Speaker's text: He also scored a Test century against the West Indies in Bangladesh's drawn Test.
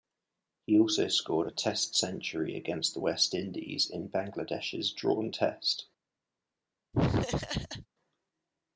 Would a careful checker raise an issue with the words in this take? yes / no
no